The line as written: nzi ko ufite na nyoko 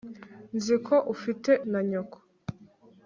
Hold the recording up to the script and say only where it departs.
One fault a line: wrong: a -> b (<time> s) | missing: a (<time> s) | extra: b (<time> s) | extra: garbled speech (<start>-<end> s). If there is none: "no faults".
no faults